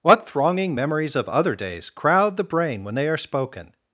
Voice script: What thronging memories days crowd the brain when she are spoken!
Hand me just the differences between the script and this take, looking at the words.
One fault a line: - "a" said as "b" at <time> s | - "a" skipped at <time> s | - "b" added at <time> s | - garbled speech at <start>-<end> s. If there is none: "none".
- "of other" added at 1.1 s
- "she" said as "they" at 2.9 s